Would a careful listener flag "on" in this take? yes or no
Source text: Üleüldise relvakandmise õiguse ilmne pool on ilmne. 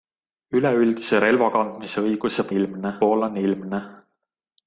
no